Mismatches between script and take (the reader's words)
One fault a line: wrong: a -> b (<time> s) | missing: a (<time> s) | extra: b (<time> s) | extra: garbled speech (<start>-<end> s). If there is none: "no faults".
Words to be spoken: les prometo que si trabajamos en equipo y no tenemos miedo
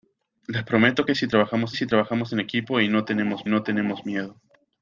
extra: si trabajamos (1.7 s)
extra: no tenemos (3.5 s)